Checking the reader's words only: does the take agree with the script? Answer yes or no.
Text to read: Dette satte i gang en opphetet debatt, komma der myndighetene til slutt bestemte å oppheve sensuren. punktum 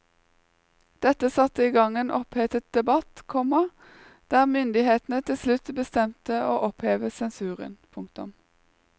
yes